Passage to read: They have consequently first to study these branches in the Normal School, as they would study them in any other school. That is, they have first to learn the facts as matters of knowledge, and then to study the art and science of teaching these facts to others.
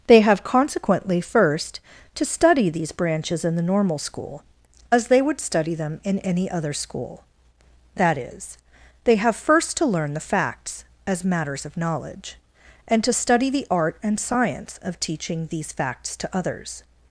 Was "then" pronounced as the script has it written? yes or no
no